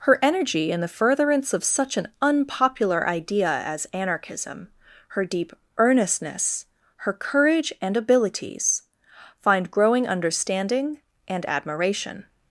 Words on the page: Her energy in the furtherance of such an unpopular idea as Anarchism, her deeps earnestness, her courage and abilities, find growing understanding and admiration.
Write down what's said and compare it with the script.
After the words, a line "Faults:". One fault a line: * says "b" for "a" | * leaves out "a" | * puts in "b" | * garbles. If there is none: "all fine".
Her energy in the furtherance of such an unpopular idea as Anarchism, her deep earnestness, her courage and abilities, find growing understanding and admiration.
Faults:
* says "deep" for "deeps"